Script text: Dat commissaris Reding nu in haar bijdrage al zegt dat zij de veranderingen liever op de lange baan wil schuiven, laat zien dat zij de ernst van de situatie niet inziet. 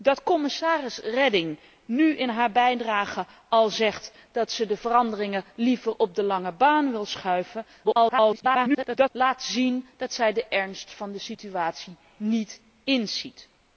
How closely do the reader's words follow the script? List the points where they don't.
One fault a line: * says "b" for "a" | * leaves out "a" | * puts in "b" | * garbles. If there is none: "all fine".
* garbles